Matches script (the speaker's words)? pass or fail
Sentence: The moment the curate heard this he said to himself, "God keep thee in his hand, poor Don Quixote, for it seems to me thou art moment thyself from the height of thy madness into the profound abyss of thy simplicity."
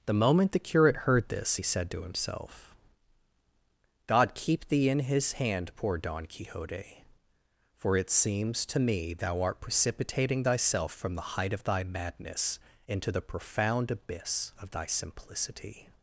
fail